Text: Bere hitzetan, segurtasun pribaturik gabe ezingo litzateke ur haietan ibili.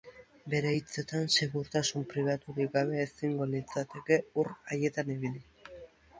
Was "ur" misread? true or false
false